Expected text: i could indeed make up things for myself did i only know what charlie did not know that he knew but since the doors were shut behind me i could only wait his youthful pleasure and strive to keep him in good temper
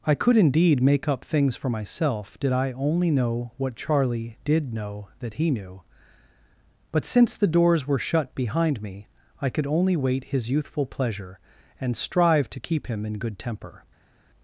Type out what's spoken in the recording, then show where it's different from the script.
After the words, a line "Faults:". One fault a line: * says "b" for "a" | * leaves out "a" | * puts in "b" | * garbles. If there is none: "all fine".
i could indeed make up things for myself did i only know what charlie did know that he knew but since the doors were shut behind me i could only wait his youthful pleasure and strive to keep him in good temper
Faults:
* leaves out "not"